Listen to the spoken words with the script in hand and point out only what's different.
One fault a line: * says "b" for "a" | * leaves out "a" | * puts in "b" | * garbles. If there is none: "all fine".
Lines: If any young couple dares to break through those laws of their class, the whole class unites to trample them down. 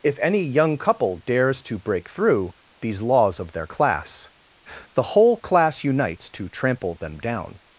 * says "these" for "those"